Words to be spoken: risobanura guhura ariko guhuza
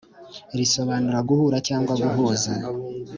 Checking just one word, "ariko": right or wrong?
wrong